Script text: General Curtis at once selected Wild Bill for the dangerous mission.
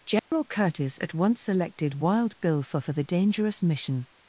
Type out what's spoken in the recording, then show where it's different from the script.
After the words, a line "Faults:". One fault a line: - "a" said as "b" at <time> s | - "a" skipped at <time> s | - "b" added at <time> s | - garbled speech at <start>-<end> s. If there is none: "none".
General Curtis at once selected Wild Bill for for the dangerous mission.
Faults:
- "for" added at 2.8 s